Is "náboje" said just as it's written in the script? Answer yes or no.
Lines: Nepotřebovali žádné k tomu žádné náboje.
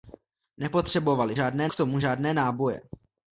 yes